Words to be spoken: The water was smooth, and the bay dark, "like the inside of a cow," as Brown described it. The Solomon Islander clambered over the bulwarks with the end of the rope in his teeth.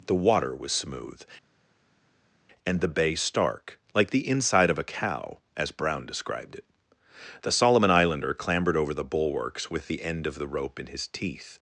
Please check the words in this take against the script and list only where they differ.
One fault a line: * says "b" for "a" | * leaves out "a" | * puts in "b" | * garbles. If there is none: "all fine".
* says "stark" for "dark"